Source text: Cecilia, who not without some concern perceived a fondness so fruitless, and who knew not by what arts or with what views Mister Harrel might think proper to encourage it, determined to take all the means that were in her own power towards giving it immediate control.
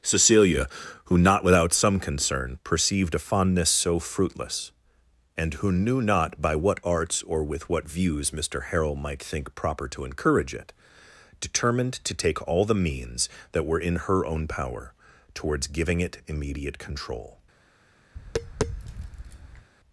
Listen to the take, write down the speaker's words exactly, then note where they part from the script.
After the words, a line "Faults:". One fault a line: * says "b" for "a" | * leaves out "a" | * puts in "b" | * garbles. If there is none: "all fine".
Cecilia, who not without some concern perceived a fondness so fruitless, and who knew not by what arts or with what views Mister Harrel might think proper to encourage it, determined to take all the means that were in her own power towards giving it immediate control.
Faults:
all fine